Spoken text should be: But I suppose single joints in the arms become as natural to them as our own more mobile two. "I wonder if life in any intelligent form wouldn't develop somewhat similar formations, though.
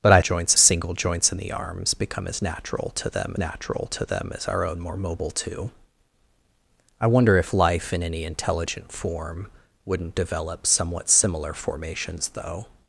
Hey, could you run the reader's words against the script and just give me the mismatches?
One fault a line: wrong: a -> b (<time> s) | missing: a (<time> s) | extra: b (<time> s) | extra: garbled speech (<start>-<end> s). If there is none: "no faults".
wrong: suppose -> joints (0.2 s)
extra: natural to them (3.4 s)